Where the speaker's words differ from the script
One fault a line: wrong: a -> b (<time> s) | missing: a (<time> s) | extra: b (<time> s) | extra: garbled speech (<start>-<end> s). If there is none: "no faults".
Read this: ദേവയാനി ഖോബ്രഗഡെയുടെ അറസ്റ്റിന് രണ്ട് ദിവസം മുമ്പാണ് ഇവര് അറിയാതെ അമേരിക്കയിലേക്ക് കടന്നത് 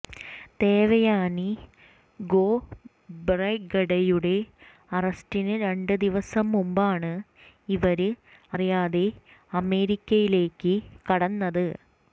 no faults